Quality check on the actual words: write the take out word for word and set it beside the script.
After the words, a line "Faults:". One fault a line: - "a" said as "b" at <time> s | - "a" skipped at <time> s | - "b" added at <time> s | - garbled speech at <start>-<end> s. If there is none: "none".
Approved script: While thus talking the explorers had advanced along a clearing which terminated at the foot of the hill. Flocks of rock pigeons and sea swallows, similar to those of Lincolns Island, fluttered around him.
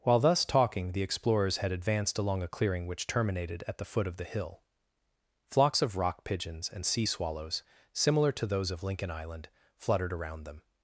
While thus talking the explorers had advanced along a clearing which terminated at the foot of the hill. Flocks of rock pigeons and sea swallows, similar to those of Lincoln Island, fluttered around them.
Faults:
- "Lincolns" said as "Lincoln" at 8.8 s
- "him" said as "them" at 10.4 s